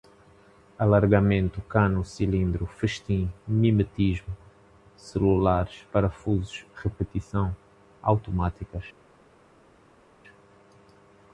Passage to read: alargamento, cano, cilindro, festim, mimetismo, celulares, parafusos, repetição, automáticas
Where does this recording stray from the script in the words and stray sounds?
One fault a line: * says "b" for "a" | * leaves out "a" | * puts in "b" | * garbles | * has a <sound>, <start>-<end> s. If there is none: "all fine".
all fine